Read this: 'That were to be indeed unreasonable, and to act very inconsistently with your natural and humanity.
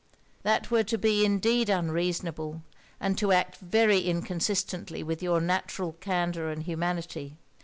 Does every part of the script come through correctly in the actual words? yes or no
no